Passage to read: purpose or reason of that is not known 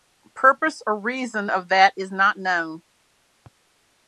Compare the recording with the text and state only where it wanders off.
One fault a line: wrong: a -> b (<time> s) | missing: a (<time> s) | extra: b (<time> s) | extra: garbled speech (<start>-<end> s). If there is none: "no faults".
no faults